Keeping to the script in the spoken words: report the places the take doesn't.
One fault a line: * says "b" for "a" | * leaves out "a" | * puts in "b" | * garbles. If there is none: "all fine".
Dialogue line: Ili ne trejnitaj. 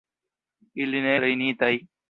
all fine